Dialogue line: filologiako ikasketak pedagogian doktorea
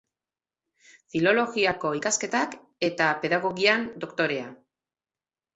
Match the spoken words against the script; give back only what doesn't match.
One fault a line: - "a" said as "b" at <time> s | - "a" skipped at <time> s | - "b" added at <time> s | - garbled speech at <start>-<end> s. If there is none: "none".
- "eta" added at 2.9 s